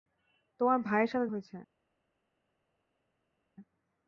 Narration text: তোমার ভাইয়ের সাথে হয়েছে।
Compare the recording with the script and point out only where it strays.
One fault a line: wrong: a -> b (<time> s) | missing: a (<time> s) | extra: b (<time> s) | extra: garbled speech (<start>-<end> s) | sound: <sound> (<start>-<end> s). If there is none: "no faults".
no faults